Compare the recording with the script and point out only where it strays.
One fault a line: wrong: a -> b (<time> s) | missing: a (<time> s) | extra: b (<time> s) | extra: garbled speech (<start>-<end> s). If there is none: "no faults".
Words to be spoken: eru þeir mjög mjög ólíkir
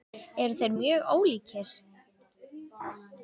missing: mjög (1.1 s)